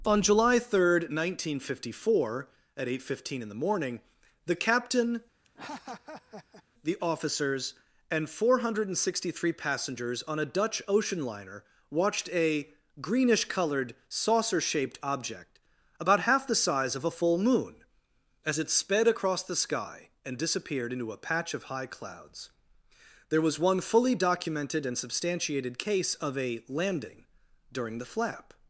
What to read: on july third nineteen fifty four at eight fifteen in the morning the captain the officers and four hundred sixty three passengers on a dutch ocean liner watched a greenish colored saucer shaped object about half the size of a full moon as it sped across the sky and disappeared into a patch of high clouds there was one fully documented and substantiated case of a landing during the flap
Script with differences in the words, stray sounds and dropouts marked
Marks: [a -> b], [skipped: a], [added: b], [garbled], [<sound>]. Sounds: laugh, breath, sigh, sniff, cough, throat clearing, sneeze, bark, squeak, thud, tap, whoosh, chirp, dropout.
on july third nineteen fifty four at eight fifteen in the morning the captain [laugh] the officers and four hundred sixty three passengers on a dutch ocean liner watched a greenish colored saucer shaped object about half the size of a full moon as it sped across the sky and disappeared into a patch of high clouds there was one fully documented and substantiated case of a landing during the flap